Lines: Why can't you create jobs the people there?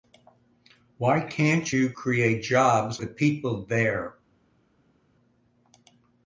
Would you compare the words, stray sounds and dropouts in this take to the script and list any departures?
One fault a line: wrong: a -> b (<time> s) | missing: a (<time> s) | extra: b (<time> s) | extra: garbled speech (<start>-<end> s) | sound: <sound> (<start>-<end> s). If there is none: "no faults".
no faults